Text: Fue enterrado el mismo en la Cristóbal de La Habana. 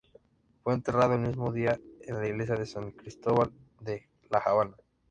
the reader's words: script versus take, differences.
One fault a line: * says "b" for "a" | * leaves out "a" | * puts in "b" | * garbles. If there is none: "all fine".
* puts in "día"
* puts in "iglesia de San"